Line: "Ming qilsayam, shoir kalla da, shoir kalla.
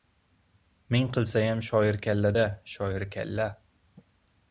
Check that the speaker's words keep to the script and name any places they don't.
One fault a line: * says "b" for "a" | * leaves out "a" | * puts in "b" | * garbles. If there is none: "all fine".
all fine